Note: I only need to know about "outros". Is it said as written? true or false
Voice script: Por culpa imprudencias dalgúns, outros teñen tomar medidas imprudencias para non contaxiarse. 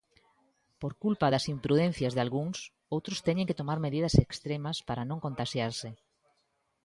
true